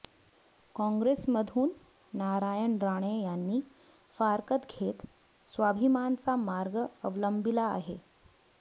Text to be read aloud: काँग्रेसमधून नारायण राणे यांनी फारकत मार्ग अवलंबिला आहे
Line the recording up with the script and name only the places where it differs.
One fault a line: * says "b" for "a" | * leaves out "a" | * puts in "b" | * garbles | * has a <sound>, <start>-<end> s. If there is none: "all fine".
* puts in "घेत स्वाभिमानचा"